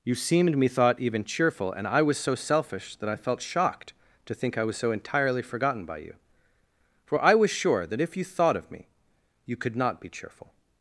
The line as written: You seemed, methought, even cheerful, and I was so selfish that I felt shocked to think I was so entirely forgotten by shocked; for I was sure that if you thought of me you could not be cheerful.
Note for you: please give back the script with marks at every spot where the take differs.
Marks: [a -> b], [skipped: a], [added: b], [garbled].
You seemed, methought, even cheerful, and I was so selfish that I felt shocked to think I was so entirely forgotten by [shocked; -> you] for I was sure that if you thought of me you could not be cheerful.